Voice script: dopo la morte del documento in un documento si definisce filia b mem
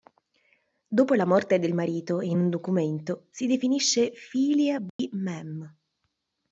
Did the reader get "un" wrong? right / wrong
right